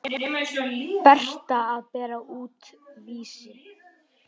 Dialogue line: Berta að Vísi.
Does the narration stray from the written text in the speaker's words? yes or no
yes